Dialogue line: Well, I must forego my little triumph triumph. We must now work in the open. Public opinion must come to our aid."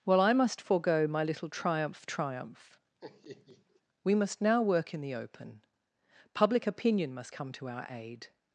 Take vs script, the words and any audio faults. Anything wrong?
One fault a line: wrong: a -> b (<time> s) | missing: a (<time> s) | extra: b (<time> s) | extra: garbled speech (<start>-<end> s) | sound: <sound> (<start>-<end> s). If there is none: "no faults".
sound: laugh (3.0-3.8 s)